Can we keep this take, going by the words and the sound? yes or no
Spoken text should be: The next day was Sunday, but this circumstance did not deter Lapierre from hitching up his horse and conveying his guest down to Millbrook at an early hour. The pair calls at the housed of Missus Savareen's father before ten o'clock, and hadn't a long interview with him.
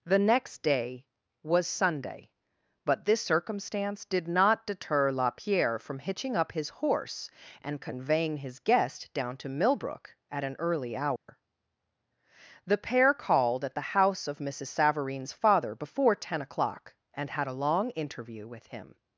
no